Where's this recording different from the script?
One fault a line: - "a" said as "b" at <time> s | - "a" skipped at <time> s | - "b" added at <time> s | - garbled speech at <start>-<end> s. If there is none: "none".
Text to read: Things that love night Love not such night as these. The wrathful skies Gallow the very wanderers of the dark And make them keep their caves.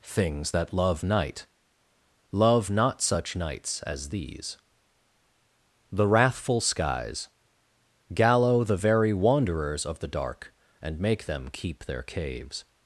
- "night" said as "nights" at 3.4 s